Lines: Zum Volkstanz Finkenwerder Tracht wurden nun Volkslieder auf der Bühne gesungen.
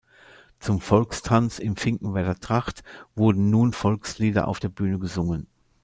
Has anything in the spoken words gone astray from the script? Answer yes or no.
yes